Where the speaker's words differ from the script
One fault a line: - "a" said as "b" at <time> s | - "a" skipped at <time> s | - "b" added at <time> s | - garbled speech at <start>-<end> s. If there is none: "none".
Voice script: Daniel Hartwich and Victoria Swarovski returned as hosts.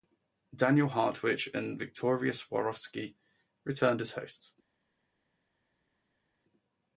none